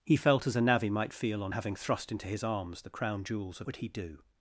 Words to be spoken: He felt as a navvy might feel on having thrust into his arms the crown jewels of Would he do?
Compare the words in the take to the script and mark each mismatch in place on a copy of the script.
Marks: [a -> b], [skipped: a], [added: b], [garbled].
He felt as a navvy might feel on having thrust into his arms the crown jewels of Would he do?